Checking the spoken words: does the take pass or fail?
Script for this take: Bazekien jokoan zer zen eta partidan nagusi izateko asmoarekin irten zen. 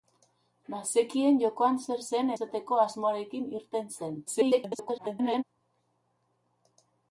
fail